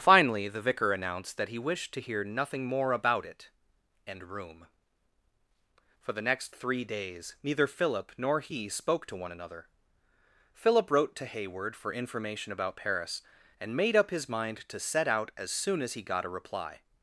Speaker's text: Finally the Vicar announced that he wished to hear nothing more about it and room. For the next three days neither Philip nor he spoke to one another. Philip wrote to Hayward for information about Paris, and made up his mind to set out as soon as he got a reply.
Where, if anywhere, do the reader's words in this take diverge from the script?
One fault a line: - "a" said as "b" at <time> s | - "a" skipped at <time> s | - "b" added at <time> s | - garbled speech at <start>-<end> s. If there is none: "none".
none